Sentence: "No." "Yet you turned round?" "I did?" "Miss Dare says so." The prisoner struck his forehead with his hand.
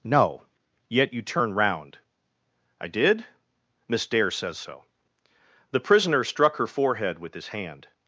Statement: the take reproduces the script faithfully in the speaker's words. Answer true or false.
false